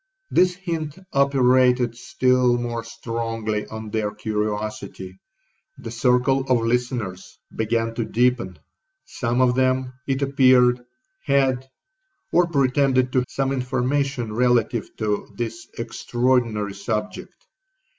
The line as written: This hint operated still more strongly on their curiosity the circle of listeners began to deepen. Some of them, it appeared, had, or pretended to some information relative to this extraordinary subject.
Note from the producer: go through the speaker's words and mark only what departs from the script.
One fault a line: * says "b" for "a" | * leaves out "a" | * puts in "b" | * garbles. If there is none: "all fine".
all fine